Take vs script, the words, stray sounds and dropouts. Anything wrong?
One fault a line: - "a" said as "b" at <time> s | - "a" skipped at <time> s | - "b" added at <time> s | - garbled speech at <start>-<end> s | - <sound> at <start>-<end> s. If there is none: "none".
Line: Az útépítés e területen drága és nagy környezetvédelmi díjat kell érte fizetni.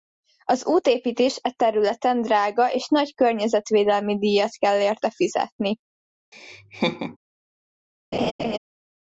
- laugh at 6.3-7.2 s
- laugh at 8.1-8.6 s